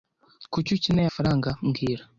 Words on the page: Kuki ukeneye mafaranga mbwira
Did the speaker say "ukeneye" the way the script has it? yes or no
yes